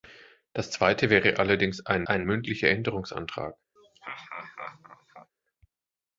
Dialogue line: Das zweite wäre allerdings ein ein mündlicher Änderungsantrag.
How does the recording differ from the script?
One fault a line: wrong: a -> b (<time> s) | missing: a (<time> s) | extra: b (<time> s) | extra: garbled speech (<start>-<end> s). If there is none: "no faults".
no faults